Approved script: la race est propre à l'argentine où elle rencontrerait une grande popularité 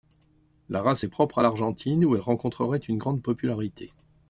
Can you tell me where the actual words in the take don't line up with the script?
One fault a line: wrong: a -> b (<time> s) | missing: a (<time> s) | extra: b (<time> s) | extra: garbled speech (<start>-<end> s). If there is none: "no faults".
no faults